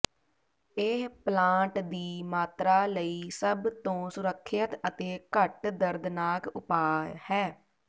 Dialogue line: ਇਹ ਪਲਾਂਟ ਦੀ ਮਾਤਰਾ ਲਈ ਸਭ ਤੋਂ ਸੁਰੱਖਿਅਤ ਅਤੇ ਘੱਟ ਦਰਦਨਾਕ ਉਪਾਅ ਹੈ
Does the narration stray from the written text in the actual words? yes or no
no